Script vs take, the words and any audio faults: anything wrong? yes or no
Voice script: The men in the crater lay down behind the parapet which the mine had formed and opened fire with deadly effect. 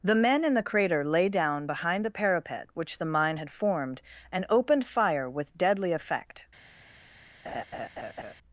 yes